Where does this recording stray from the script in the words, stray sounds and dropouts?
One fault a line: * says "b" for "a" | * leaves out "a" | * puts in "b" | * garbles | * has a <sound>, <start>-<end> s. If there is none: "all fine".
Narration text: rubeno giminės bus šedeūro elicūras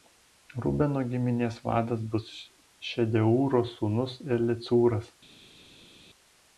* puts in "vadas"
* puts in "sūnus"